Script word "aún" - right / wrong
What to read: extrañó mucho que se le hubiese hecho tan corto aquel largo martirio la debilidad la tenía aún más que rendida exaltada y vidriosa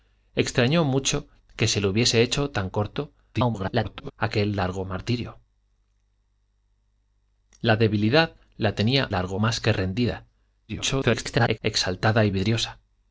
wrong